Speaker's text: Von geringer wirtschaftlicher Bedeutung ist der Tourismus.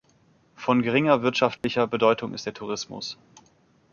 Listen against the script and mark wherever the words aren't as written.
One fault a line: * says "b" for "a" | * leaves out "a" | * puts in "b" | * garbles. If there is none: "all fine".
all fine